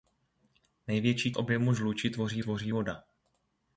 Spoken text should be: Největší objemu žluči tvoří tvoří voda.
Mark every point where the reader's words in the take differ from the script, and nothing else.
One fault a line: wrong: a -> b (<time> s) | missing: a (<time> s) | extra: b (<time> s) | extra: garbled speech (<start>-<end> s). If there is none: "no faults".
no faults